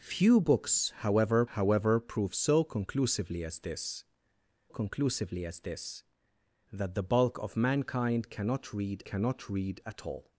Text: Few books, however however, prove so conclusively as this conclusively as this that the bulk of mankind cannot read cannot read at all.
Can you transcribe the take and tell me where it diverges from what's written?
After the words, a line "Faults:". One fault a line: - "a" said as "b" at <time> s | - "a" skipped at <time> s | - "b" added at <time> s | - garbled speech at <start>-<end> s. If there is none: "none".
Few books, however however, prove so conclusively as this conclusively as this that the bulk of mankind cannot read cannot read at all.
Faults:
none